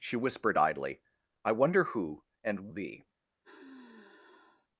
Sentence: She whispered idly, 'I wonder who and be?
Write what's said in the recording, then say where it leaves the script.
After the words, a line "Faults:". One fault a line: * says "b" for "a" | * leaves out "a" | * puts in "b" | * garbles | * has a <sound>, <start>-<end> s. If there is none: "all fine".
She whispered idly, 'I wonder who and be?
Faults:
* has a sigh, 3.4-4.7 s